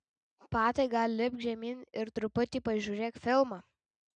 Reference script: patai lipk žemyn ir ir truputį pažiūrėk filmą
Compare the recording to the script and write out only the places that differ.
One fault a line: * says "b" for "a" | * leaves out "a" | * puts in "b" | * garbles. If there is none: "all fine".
* puts in "gal"
* leaves out "ir"